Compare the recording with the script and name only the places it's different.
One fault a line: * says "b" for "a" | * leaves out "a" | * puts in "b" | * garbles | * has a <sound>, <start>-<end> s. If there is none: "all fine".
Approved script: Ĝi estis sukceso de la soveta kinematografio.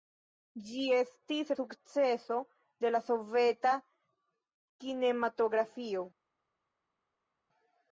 all fine